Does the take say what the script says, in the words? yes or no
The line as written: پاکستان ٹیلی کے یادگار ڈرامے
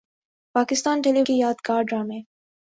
yes